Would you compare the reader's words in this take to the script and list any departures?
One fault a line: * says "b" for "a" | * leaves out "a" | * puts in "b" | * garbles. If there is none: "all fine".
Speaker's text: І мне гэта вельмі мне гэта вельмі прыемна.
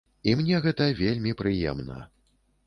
* leaves out "мне гэта вельмі"